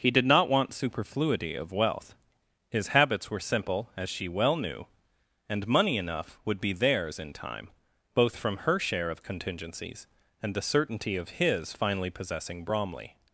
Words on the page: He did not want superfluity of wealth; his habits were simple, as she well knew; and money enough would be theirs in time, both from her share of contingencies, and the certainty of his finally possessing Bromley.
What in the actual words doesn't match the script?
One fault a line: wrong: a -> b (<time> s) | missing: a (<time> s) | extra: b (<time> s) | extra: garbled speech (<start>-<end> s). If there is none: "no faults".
no faults